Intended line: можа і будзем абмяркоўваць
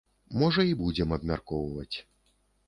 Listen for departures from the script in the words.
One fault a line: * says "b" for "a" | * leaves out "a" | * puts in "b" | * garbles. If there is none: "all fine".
all fine